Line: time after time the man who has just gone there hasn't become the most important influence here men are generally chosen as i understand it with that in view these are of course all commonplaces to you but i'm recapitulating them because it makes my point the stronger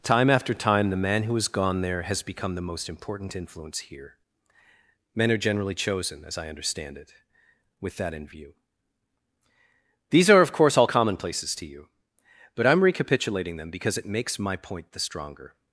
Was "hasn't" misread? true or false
true